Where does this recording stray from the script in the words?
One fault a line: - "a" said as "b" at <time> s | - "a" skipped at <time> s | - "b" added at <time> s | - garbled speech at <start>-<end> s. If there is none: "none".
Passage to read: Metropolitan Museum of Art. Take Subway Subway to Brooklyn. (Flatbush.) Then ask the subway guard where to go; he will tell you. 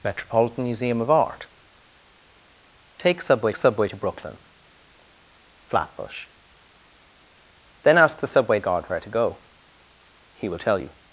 none